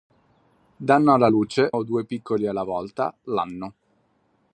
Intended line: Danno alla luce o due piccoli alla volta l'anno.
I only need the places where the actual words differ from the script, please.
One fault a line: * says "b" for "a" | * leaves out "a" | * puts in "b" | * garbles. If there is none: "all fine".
all fine